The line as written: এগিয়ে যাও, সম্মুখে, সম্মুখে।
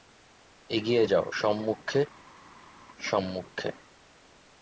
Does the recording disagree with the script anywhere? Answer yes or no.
no